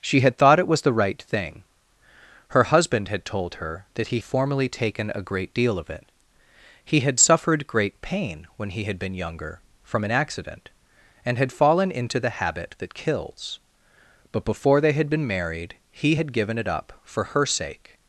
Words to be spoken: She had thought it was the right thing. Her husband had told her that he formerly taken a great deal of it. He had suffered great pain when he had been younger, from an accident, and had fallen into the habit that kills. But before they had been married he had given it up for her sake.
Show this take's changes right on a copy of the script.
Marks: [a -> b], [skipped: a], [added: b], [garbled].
She had thought it was the right thing. Her husband had told her that he formerly taken a great deal of it. He had suffered great pain when he had been younger, from an accident, and had fallen into the habit that kills. But before they had been married he had given it up for her sake.